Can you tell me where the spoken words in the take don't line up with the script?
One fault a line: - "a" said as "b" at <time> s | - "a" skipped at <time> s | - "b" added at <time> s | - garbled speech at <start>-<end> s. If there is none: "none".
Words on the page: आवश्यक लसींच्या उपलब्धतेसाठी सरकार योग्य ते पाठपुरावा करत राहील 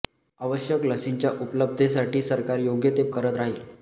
- "पाठपुरावा" skipped at 3.1 s